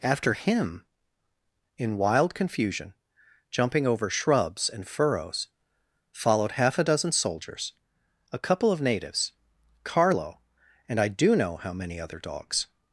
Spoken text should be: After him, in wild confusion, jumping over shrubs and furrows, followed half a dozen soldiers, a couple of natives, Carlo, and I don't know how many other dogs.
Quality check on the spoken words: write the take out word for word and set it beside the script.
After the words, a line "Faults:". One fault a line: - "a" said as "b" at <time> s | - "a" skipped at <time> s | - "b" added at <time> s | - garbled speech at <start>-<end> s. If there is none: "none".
After him, in wild confusion, jumping over shrubs and furrows, followed half a dozen soldiers, a couple of natives, Carlo, and I do know how many other dogs.
Faults:
- "don't" said as "do" at 11.1 s